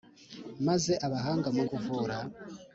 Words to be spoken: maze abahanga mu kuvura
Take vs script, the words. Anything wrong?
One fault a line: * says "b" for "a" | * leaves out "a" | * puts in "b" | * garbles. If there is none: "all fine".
all fine